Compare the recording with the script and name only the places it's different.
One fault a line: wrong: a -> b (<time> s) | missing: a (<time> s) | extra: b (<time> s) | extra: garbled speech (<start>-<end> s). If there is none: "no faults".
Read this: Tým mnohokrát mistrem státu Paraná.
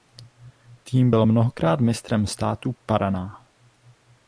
extra: byl (1.1 s)